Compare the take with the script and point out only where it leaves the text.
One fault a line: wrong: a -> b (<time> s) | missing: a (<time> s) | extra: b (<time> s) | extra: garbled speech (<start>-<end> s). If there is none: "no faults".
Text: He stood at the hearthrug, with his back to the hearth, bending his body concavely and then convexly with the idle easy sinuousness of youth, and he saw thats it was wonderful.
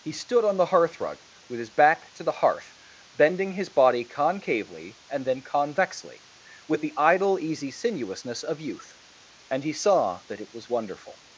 wrong: at -> on (0.4 s)
wrong: thats -> that (10.3 s)